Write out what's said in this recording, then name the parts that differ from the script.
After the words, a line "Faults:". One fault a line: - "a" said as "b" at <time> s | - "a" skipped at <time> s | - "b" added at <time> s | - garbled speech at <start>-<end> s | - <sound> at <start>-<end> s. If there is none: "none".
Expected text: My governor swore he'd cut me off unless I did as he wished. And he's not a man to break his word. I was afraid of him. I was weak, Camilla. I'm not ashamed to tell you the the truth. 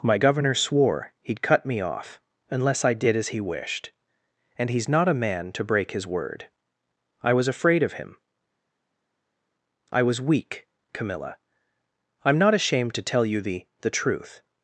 My governor swore he'd cut me off unless I did as he wished. And he's not a man to break his word. I was afraid of him. I was weak, Camilla. I'm not ashamed to tell you the the truth.
Faults:
none